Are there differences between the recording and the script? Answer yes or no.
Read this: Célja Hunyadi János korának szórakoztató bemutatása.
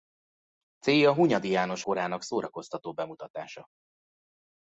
no